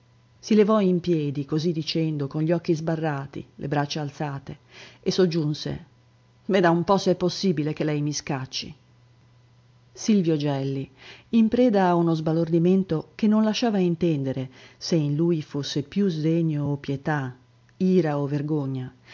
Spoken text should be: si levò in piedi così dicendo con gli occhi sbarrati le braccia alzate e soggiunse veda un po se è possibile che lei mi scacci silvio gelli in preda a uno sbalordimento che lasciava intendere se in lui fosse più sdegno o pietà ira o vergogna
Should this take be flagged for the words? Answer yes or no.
yes